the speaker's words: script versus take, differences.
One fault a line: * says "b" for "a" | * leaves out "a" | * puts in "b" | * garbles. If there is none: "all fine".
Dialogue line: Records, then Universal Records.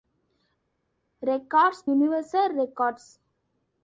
* leaves out "then"